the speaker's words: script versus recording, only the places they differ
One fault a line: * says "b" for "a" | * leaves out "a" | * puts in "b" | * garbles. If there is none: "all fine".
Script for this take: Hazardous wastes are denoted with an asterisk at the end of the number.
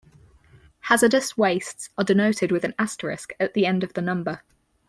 all fine